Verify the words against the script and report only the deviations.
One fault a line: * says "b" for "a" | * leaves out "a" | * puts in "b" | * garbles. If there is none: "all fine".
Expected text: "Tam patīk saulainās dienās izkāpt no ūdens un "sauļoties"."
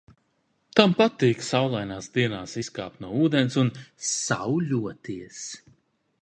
all fine